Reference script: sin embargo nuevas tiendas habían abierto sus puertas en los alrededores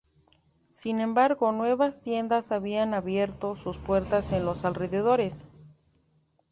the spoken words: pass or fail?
pass